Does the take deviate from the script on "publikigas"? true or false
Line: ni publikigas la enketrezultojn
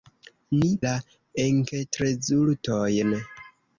true